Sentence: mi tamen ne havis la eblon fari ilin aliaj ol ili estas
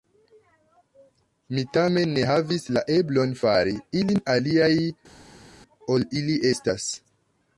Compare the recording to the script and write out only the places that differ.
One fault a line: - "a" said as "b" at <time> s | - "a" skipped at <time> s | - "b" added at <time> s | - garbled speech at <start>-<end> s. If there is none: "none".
none